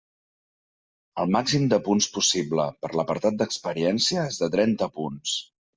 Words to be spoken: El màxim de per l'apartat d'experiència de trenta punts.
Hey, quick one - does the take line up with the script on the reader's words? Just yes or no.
no